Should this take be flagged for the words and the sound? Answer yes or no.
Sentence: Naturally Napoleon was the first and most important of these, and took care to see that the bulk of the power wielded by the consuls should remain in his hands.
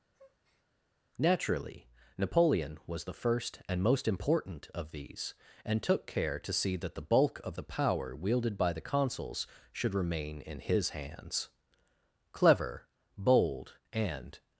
yes